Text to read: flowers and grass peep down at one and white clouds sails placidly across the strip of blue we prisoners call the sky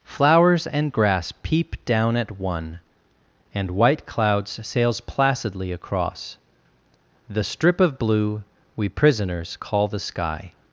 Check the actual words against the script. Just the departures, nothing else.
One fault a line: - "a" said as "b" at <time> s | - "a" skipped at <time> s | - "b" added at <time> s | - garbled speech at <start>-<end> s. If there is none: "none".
none